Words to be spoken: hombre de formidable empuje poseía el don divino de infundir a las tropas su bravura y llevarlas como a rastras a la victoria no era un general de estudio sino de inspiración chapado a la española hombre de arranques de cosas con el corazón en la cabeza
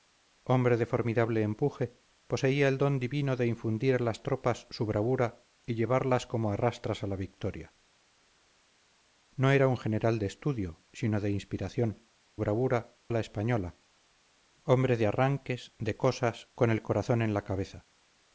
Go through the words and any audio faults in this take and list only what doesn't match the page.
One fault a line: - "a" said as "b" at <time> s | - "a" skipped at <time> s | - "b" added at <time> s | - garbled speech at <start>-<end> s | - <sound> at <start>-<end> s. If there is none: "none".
- "chapado" said as "bravura" at 12.4 s